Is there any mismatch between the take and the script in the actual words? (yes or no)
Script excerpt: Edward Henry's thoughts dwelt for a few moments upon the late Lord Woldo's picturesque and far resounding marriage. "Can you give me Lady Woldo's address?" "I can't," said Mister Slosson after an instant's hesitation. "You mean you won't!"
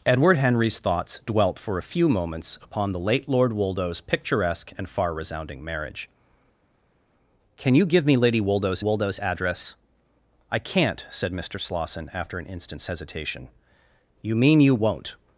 yes